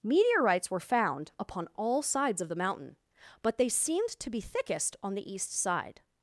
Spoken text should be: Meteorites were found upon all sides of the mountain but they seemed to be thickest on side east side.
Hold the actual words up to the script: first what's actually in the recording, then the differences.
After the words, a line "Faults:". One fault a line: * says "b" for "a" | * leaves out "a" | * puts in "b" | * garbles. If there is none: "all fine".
Meteorites were found upon all sides of the mountain but they seemed to be thickest on the east side.
Faults:
* says "the" for "side"